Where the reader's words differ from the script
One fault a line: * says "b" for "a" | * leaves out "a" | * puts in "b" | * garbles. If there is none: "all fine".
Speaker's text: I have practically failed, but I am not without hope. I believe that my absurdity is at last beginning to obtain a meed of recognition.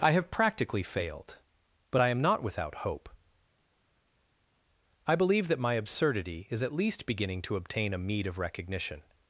* says "least" for "last"